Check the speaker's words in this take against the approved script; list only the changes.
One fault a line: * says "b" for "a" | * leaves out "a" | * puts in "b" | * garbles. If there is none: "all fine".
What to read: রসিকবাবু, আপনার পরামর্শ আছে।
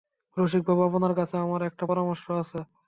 * puts in "কাছে আমার একটা"